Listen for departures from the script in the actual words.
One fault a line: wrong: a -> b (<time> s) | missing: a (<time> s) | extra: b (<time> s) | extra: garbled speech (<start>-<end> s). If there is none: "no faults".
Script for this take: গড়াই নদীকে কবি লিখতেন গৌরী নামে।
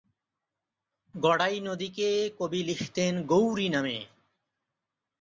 no faults